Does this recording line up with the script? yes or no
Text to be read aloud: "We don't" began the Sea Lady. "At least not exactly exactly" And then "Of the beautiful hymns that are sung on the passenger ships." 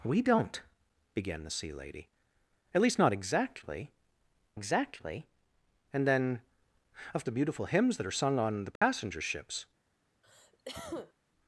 yes